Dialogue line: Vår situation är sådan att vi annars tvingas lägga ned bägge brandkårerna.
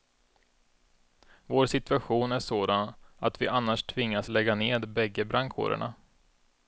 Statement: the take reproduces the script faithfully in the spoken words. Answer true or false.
true